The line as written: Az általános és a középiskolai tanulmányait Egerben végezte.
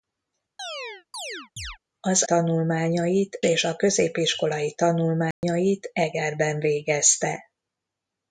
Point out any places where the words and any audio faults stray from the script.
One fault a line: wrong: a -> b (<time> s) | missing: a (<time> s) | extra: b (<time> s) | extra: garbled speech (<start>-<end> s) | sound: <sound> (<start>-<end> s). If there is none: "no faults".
sound: chirp (0.6-1.8 s)
wrong: általános -> tanulmányait (2.2 s)
sound: dropout (5.3-5.4 s)